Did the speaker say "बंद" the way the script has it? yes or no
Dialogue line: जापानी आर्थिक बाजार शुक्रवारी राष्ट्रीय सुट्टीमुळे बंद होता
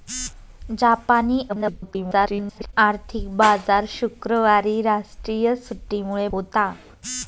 no